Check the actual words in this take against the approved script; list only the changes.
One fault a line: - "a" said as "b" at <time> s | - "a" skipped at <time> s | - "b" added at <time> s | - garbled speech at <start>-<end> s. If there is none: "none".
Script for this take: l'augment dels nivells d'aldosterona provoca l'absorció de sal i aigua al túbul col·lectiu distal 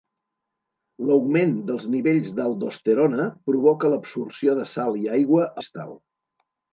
- "al túbul col·lectiu" skipped at 5.5 s